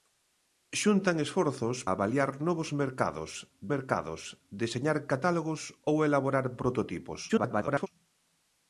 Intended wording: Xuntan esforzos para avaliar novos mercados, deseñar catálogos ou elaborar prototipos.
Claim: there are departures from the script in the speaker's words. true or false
true